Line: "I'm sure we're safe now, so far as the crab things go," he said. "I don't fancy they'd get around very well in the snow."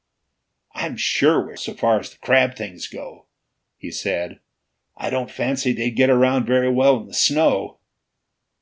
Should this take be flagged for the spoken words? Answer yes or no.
yes